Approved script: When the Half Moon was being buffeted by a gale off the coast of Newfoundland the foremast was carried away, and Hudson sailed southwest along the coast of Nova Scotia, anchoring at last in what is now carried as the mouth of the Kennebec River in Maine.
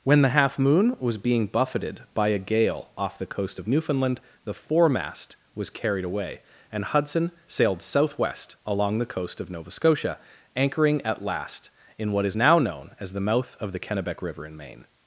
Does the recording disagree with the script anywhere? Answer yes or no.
yes